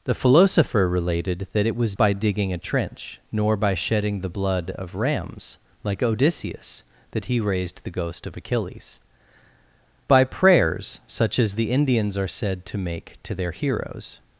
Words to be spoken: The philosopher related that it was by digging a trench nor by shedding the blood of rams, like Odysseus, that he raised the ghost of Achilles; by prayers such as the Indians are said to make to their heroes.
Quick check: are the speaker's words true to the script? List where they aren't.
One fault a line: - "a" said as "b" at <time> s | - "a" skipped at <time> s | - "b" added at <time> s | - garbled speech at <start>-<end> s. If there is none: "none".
none